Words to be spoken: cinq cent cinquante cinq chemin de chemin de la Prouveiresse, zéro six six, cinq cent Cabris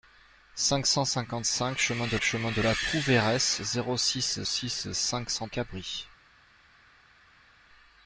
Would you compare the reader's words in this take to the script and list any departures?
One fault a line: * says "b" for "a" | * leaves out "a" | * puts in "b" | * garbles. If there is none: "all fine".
all fine